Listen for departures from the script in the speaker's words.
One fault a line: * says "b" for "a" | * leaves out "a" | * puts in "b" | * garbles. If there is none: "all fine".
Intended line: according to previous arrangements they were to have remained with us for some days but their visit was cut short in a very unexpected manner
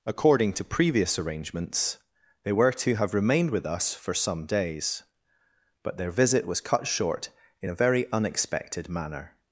all fine